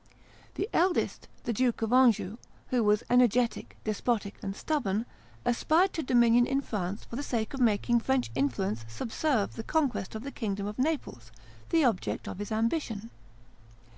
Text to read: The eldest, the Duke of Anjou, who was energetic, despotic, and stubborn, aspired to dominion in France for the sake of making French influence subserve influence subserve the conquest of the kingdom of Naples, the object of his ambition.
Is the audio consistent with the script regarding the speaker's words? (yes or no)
no